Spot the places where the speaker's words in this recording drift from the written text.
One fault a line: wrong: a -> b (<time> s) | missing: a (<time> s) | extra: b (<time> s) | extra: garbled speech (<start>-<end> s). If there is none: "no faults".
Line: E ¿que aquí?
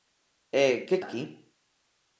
no faults